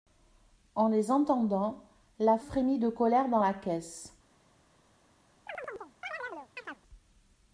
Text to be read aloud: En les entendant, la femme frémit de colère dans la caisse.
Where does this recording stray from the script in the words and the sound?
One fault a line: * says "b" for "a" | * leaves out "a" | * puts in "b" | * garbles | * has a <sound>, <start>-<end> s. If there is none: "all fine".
* leaves out "femme"
* has a chirp, 5.5-6.8 s